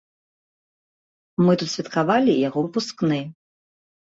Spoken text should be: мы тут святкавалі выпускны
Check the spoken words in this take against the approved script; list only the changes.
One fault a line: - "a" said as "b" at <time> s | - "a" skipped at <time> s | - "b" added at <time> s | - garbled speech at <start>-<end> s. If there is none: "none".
- "яго" added at 2.5 s